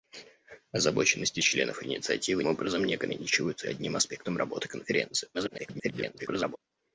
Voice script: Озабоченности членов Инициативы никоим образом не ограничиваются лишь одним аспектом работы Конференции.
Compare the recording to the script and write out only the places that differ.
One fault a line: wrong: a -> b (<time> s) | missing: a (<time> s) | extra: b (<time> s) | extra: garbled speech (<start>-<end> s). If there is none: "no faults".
missing: никоим (2.4 s)
missing: лишь (3.7 s)
extra: garbled speech (5.3-6.6 s)